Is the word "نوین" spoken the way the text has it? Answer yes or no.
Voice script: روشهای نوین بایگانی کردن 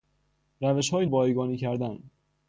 no